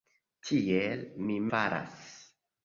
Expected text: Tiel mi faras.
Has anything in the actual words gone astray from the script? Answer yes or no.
no